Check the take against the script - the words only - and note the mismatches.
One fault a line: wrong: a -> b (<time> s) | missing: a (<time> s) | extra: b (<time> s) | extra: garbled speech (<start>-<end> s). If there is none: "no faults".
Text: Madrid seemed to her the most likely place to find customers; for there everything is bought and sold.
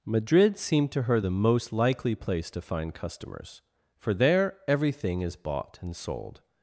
no faults